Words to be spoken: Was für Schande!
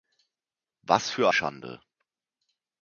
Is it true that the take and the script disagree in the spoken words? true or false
false